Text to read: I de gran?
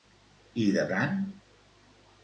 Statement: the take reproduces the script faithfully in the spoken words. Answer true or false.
true